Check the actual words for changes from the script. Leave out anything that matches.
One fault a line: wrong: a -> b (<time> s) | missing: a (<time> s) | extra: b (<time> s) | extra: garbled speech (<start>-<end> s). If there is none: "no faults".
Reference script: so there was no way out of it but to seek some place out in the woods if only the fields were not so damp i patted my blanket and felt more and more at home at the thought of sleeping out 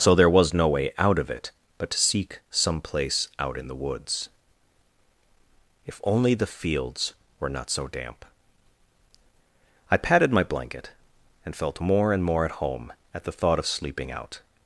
no faults